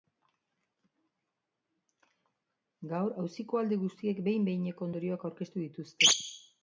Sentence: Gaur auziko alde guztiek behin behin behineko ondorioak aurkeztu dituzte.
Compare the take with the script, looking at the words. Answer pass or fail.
fail